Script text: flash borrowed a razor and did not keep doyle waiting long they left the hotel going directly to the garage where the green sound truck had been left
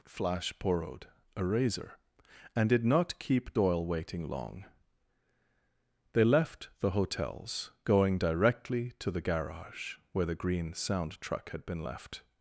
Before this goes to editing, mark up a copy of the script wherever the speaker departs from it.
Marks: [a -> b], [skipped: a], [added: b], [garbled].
flash borrowed a razor and did not keep doyle waiting long they left the [hotel -> hotels] going directly to the garage where the green sound truck had been left